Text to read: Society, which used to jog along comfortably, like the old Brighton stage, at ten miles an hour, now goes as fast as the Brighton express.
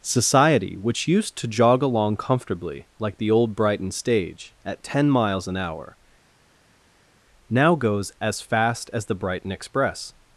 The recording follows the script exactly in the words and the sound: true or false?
true